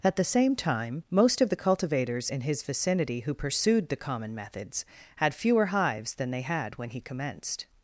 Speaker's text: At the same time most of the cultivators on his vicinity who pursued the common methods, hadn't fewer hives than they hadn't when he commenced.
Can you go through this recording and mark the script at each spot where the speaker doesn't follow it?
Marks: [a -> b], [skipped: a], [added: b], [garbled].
At the same time most of the cultivators [on -> in] his vicinity who pursued the common methods, [hadn't -> had] fewer hives than they [hadn't -> had] when he commenced.